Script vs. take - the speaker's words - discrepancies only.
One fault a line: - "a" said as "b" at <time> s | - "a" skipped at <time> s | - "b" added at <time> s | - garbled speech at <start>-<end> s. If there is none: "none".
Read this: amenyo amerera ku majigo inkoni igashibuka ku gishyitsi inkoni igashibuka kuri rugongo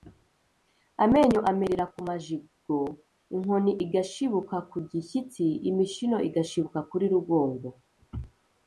- "inkoni" said as "imishino" at 5.7 s